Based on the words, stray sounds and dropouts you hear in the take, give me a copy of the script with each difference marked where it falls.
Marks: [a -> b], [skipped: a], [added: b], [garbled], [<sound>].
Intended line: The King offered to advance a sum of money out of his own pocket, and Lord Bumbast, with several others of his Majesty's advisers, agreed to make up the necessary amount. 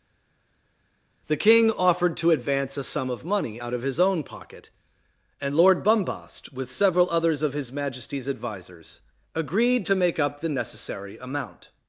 The King offered to advance a sum of money out of his own pocket, and Lord Bumbast, with several others of his Majesty's advisers, agreed to make up the necessary amount.